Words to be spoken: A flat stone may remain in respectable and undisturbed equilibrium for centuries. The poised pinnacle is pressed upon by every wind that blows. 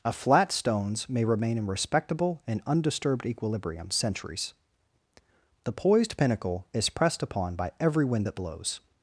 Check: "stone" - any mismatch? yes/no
yes